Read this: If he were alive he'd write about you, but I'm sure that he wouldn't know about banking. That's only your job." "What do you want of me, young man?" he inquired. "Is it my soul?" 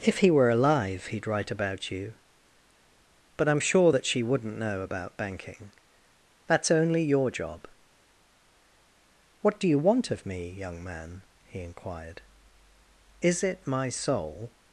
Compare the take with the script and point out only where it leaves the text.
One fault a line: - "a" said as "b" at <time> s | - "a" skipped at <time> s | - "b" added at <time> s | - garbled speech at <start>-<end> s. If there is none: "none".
- "he" said as "she" at 4.0 s